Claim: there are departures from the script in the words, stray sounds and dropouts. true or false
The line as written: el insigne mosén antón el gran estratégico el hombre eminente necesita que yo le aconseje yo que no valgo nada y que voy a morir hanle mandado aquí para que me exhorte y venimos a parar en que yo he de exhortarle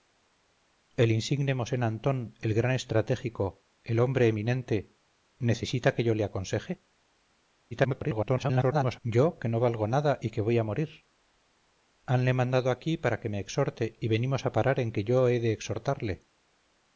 true